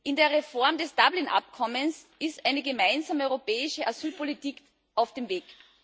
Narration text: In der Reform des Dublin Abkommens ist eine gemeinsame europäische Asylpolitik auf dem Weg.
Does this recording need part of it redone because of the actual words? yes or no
no